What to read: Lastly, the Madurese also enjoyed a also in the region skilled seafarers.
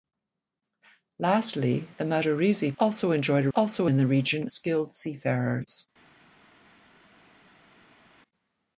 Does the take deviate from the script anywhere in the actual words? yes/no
no